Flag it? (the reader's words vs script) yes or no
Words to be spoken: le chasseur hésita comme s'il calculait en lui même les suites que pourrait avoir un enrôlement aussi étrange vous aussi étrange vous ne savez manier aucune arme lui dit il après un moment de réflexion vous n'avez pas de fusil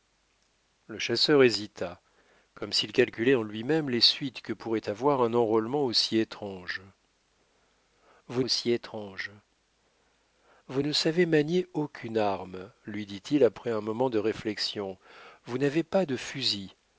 no